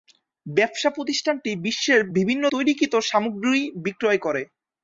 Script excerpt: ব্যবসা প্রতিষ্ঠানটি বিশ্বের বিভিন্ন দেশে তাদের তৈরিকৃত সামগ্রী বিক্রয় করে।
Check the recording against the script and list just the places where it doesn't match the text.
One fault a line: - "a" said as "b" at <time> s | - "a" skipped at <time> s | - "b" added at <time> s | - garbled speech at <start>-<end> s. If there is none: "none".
- "দেশে তাদের" skipped at 2.4 s